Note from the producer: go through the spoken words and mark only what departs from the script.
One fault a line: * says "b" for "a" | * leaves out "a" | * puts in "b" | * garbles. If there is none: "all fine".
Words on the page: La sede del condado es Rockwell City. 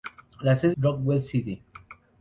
* leaves out "del condado es"